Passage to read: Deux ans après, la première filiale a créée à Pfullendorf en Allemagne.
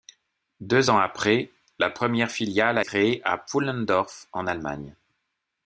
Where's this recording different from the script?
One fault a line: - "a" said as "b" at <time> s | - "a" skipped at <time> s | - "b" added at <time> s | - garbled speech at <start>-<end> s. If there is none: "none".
none